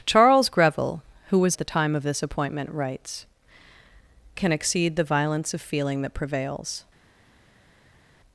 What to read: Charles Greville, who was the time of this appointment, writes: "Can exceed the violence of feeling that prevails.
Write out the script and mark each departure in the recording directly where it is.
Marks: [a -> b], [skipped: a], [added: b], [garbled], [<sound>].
Charles Greville, who was the time of this appointment, writes: "Can exceed the violence of feeling that prevails.